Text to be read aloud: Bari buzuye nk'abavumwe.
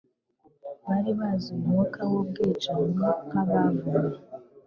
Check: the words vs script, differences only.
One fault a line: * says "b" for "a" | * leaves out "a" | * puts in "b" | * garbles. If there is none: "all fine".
* puts in "umwuka w'ubwicanyi"